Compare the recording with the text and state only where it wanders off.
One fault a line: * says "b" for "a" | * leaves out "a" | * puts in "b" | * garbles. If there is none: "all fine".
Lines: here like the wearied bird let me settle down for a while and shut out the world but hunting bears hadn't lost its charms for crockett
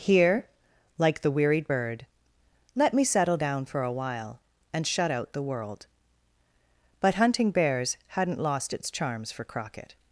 all fine